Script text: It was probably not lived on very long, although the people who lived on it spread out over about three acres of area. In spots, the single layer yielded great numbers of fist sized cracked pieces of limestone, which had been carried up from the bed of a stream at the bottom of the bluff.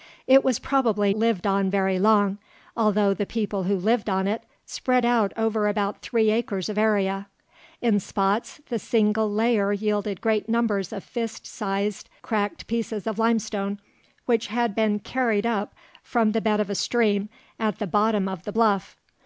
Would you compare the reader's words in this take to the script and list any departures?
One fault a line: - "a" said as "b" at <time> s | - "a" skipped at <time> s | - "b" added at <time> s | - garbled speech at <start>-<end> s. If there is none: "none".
- "not" skipped at 1.1 s